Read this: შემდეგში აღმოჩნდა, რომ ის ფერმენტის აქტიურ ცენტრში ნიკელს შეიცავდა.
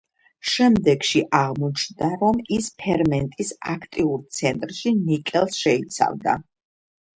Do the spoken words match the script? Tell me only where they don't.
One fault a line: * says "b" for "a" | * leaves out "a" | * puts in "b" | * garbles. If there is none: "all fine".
all fine